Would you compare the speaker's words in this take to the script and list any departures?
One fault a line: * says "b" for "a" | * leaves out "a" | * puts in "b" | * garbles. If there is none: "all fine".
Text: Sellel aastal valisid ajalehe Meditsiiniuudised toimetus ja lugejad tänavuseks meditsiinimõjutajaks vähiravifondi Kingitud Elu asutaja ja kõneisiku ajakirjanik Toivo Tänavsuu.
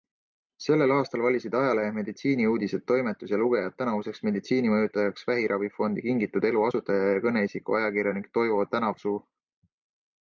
all fine